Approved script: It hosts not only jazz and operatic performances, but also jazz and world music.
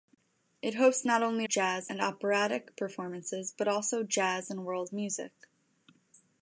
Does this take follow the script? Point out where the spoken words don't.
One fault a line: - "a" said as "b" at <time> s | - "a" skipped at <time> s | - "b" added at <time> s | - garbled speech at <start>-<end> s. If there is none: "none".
none